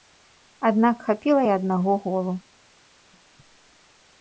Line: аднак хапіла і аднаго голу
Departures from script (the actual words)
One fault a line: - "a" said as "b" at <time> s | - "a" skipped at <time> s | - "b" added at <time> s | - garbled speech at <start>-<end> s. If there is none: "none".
none